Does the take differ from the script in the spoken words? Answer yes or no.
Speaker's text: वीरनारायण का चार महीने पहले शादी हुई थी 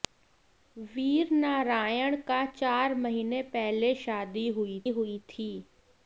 yes